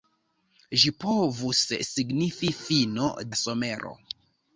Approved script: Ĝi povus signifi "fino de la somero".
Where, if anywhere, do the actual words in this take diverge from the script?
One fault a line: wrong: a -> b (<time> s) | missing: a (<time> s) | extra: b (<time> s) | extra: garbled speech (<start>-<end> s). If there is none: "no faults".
missing: de (3.1 s)